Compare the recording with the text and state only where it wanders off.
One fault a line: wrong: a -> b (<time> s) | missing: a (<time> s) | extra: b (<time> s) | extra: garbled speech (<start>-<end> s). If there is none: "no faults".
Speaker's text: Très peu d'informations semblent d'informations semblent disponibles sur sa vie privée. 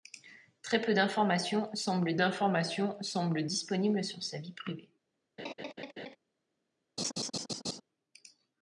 no faults